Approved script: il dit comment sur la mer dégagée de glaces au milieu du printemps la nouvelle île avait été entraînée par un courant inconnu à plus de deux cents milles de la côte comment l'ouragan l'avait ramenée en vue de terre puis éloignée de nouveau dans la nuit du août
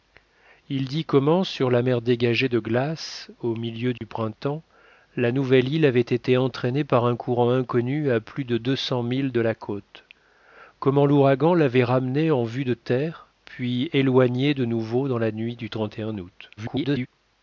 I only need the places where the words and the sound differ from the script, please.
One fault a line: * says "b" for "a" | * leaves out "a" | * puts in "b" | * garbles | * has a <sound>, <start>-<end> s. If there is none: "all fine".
* has a dropout, 4.0-4.0 s
* garbles